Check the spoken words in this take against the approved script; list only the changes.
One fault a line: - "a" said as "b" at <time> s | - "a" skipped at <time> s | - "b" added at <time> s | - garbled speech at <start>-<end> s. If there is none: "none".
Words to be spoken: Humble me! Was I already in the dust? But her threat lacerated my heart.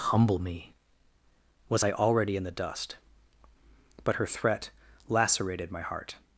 none